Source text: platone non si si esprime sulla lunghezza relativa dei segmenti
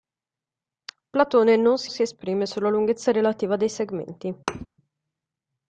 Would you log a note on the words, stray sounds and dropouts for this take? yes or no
yes